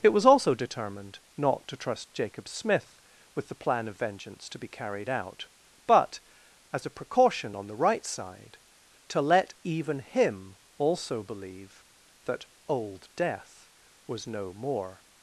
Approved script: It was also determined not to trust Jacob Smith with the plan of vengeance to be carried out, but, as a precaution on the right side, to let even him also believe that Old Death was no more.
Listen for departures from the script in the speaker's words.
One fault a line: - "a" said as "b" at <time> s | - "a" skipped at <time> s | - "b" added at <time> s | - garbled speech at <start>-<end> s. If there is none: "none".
none